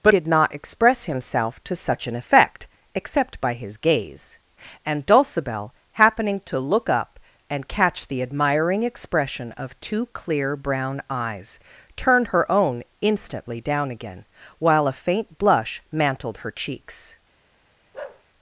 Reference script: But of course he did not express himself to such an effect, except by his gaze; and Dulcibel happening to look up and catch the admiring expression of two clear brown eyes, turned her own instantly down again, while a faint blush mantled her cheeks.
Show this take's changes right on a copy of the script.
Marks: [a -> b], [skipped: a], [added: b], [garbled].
But [skipped: of course he] did not express himself to such an effect, except by his gaze; and Dulcibel happening to look up and catch the admiring expression of two clear brown eyes, turned her own instantly down again, while a faint blush mantled her cheeks.